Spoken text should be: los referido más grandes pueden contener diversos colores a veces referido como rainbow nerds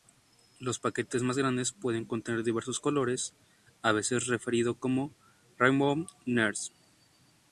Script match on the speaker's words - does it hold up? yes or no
no